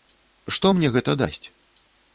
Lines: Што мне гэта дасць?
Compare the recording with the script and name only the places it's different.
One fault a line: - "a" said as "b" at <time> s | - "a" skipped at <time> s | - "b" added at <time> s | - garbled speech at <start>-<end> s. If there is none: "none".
none